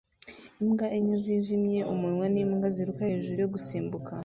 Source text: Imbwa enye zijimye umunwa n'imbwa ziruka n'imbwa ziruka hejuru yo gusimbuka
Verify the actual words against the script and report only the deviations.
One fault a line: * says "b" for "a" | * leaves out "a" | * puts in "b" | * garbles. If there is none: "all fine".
* leaves out "n'imbwa ziruka"